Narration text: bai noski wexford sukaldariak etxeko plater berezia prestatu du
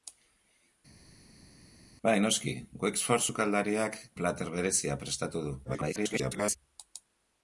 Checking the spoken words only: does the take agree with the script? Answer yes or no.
no